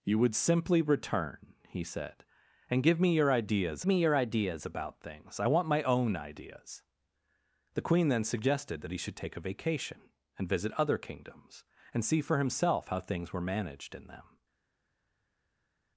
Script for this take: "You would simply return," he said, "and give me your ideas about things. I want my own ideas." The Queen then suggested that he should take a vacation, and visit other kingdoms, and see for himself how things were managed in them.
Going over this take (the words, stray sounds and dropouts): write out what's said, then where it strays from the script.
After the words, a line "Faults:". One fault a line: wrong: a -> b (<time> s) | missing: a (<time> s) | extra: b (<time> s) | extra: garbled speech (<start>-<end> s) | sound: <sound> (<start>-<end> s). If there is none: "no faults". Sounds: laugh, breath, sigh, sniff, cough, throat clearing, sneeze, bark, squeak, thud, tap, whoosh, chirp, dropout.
"You would simply return," he said, "and give me your ideas me your ideas about things. I want my own ideas." The Queen then suggested that he should take a vacation, and visit other kingdoms, and see for himself how things were managed in them.
Faults:
extra: me your ideas (3.9 s)